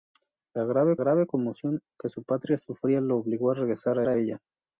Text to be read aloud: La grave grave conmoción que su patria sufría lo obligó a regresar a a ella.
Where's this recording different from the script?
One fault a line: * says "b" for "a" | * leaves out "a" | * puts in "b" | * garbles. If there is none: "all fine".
all fine